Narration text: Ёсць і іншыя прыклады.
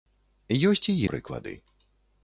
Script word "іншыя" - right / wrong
wrong